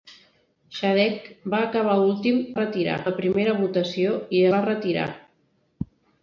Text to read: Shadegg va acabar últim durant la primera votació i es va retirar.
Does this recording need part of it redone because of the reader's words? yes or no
yes